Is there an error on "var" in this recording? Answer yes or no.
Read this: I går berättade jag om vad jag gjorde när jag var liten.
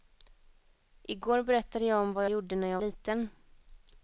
yes